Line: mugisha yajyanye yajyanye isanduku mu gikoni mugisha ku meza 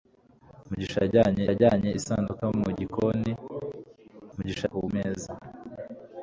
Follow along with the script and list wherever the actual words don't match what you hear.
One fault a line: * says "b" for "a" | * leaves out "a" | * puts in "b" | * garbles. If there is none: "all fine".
all fine